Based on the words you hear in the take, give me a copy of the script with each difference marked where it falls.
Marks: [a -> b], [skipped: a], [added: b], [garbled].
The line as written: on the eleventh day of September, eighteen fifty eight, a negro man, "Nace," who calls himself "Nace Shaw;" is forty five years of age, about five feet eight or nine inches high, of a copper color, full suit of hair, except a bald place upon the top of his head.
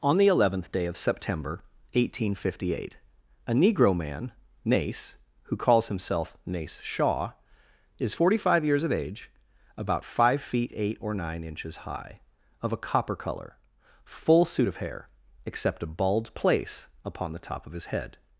on the eleventh day of September, eighteen fifty eight, a negro man, "Nace," who calls himself "Nace Shaw;" is forty five years of age, about five feet eight or nine inches high, of a copper color, full suit of hair, except a bald place upon the top of his head.